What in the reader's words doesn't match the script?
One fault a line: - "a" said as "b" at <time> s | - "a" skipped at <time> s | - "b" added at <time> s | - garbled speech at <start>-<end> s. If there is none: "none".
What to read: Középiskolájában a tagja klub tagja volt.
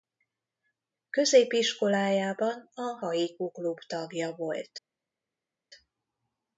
- "tagja" said as "haiku" at 3.0 s